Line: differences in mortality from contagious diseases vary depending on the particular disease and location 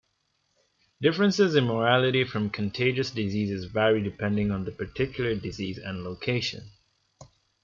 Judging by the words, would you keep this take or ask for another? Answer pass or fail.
pass